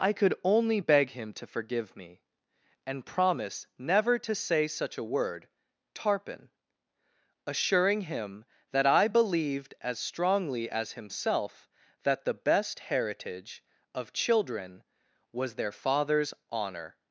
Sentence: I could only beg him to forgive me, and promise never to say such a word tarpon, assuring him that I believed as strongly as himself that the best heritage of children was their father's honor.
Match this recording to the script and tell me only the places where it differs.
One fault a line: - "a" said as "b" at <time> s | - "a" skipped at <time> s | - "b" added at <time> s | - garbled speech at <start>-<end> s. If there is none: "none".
none